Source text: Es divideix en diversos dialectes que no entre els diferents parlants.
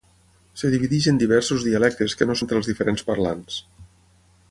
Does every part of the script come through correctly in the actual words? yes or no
yes